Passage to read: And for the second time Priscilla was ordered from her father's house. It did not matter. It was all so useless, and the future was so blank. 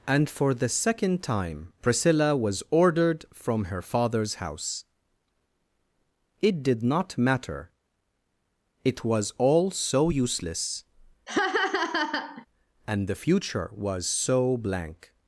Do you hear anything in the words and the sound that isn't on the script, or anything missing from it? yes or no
yes